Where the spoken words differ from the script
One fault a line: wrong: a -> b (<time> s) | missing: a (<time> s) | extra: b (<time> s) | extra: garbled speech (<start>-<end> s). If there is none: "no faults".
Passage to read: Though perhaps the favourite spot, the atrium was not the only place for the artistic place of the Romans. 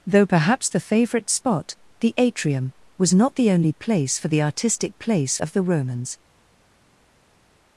no faults